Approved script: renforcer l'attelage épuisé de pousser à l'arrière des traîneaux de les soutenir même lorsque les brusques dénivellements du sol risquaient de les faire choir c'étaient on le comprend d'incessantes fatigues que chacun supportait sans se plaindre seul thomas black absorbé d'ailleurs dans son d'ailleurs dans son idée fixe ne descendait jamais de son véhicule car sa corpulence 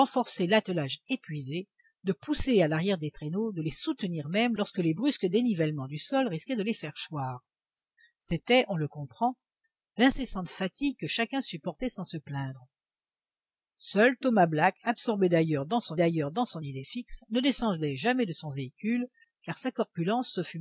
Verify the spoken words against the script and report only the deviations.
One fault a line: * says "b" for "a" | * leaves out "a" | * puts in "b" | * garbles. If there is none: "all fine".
all fine